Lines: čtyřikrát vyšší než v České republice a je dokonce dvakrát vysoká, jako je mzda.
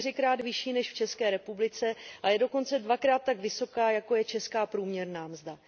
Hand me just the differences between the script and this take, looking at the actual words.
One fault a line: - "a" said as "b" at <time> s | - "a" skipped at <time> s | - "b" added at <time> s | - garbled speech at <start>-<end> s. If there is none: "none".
- "tak" added at 3.2 s
- "česká průměrná" added at 4.2 s